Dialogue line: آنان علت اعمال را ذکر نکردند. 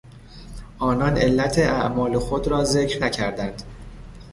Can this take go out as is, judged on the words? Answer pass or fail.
fail